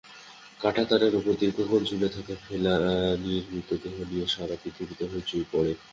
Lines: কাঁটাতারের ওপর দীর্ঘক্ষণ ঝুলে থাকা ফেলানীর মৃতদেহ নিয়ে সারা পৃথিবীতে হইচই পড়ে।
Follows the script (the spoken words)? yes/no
yes